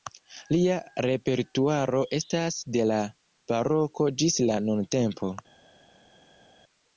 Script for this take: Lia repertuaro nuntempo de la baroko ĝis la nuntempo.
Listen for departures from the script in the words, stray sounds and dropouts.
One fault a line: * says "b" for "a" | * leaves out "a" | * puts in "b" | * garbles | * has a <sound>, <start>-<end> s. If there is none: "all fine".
* says "estas" for "nuntempo"